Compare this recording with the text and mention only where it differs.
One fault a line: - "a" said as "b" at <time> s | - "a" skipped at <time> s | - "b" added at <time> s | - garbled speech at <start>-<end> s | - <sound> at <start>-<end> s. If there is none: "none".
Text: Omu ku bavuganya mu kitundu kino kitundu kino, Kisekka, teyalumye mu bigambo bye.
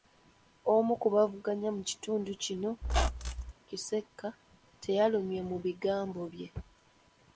- "kitundu kino" skipped at 2.7 s
- squeak at 2.8-3.5 s